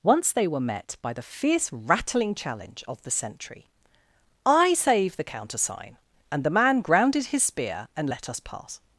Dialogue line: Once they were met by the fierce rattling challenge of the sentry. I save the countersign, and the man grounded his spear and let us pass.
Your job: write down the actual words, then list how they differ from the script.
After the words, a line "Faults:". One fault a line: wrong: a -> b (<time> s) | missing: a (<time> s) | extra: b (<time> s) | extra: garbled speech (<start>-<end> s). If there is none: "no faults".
Once they were met by the fierce rattling challenge of the sentry. I save the countersign, and the man grounded his spear and let us pass.
Faults:
no faults